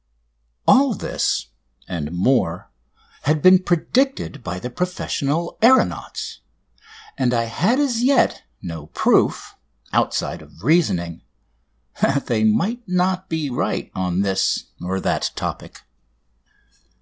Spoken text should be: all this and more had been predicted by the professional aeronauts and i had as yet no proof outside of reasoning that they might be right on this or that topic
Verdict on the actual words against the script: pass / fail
fail